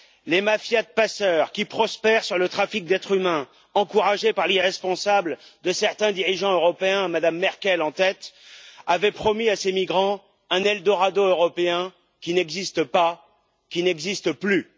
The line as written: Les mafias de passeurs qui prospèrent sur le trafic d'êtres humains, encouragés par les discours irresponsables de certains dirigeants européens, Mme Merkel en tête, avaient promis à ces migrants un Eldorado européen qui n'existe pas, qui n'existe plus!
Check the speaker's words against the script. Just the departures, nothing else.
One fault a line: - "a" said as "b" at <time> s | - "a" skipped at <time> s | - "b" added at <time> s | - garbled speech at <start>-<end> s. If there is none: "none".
- "les discours" skipped at 4.5 s